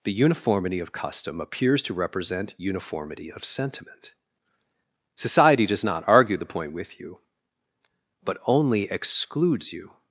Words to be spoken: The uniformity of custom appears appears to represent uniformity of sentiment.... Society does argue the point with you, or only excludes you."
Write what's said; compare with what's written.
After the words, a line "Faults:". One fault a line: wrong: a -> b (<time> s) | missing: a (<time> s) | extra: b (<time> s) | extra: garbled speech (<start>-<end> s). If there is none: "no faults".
The uniformity of custom appears to represent uniformity of sentiment.... Society does not argue the point with you, but only excludes you."
Faults:
missing: appears (1.8 s)
extra: not (5.8 s)
wrong: or -> but (8.2 s)